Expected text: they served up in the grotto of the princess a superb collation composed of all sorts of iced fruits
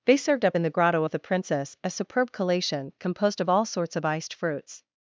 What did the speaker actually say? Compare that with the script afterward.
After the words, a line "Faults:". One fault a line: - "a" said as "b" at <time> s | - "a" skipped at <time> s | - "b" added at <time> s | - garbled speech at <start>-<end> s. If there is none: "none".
they served up in the grotto of the princess a superb collation composed of all sorts of iced fruits
Faults:
none